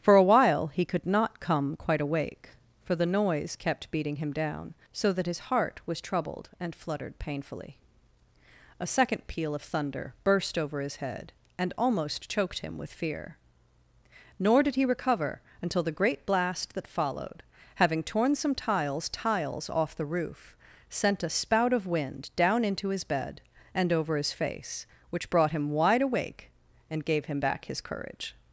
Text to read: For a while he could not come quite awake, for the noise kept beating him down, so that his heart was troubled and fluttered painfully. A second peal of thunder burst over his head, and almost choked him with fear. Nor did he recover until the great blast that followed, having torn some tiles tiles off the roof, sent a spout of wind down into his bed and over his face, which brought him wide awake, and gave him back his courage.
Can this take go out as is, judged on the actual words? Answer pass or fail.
pass